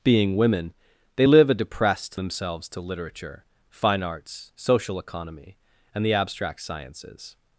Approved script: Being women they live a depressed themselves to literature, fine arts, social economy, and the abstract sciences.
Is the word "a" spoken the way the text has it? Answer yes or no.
yes